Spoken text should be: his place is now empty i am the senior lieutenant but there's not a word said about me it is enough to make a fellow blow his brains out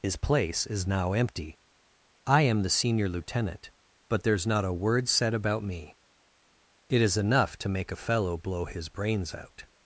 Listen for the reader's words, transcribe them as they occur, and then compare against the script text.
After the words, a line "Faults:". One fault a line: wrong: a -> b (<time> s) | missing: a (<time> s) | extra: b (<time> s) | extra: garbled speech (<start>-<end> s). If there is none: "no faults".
his place is now empty i am the senior lieutenant but there's not a word said about me it is enough to make a fellow blow his brains out
Faults:
no faults